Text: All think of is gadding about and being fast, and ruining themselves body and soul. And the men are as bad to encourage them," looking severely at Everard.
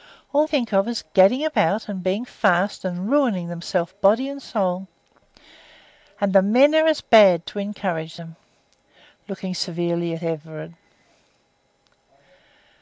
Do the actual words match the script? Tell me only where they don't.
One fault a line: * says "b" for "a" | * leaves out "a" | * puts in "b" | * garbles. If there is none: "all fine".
all fine